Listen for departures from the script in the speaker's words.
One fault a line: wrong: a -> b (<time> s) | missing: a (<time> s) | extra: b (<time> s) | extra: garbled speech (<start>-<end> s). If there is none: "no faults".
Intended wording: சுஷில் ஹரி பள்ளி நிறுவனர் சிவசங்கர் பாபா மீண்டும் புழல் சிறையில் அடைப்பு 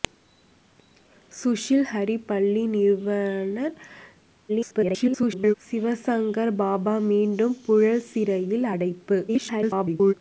extra: garbled speech (4.5-5.5 s)
extra: garbled speech (9.3-10.1 s)